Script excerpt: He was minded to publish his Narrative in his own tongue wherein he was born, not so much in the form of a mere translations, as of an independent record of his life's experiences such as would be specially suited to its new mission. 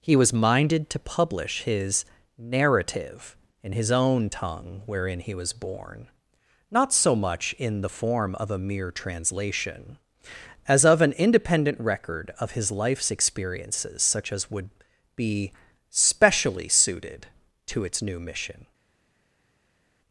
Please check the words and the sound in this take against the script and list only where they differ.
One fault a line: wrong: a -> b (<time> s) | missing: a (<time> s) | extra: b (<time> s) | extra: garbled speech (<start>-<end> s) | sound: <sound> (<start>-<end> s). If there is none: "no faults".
wrong: translations -> translation (8.9 s)